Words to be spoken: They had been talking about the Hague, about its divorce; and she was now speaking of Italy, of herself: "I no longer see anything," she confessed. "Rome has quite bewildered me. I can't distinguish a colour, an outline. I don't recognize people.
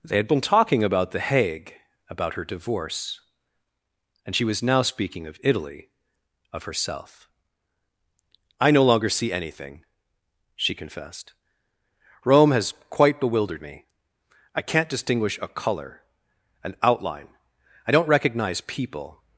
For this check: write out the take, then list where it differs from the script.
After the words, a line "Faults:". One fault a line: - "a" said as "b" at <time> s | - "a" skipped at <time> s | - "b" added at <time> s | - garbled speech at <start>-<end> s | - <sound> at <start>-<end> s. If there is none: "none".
They had been talking about the Hague, about her divorce; and she was now speaking of Italy, of herself: "I no longer see anything," she confessed. "Rome has quite bewildered me. I can't distinguish a colour, an outline. I don't recognize people.
Faults:
- "its" said as "her" at 2.3 s